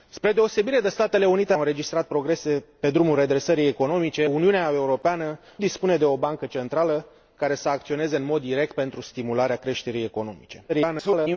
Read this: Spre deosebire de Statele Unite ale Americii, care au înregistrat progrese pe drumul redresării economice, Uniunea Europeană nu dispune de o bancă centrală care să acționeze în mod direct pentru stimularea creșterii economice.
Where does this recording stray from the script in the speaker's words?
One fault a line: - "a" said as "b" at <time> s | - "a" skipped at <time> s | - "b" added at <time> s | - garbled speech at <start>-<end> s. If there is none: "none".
- "ale Americii care" skipped at 1.5 s
- "nu" skipped at 5.4 s
- garbled speech at 10.7-11.4 s